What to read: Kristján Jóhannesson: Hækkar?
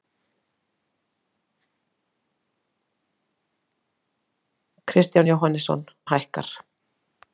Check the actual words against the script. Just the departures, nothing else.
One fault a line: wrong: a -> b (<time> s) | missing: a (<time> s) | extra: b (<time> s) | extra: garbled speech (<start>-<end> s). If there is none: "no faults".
no faults